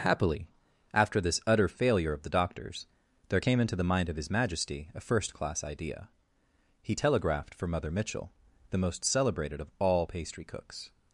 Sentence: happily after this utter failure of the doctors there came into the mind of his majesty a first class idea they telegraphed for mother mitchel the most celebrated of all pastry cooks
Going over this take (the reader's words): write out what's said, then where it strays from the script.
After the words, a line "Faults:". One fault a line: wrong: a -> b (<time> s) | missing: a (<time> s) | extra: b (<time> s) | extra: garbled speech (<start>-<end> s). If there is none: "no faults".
happily after this utter failure of the doctors there came into the mind of his majesty a first class idea he telegraphed for mother mitchel the most celebrated of all pastry cooks
Faults:
wrong: they -> he (6.8 s)